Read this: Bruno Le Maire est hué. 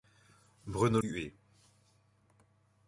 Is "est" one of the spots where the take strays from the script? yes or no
yes